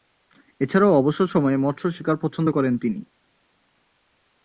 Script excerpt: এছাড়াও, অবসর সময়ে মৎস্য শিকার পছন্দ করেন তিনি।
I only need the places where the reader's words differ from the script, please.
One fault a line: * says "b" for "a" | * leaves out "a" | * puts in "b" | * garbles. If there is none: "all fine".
all fine